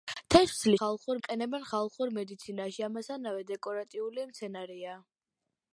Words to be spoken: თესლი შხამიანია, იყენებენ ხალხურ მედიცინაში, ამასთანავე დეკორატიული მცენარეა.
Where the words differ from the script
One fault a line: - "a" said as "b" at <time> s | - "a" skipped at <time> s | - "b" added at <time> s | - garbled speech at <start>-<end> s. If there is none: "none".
- "შხამიანია" said as "ხალხურ" at 0.8 s